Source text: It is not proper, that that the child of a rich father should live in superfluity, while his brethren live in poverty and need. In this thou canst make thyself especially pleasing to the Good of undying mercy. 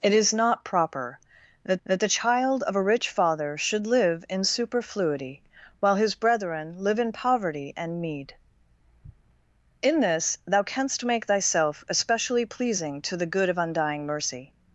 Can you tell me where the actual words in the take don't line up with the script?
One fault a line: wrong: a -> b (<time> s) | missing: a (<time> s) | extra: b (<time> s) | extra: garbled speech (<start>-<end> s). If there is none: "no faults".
no faults